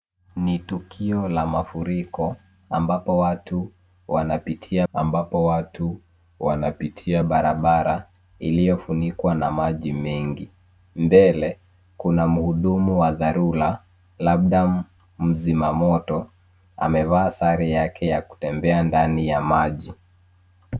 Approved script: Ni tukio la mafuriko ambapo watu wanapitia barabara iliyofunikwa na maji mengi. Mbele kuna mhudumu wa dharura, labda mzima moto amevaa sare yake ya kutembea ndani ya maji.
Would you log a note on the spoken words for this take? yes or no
yes